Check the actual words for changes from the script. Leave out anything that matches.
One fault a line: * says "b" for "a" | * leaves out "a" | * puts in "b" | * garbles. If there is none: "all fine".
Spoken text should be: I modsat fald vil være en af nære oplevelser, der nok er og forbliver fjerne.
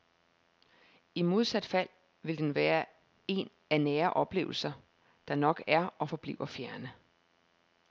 * puts in "den"